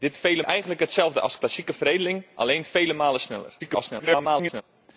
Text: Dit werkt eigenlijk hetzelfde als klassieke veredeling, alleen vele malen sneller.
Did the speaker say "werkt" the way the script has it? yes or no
no